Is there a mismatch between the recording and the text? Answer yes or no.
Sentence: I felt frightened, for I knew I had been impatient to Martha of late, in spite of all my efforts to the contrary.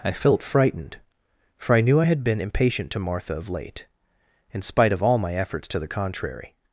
no